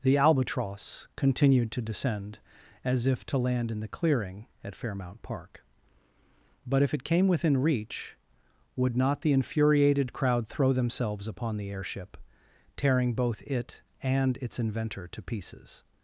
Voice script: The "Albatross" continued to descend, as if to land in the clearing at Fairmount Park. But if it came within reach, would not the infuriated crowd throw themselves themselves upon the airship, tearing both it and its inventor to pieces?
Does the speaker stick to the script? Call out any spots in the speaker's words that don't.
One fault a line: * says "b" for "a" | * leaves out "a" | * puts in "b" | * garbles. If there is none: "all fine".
* leaves out "themselves"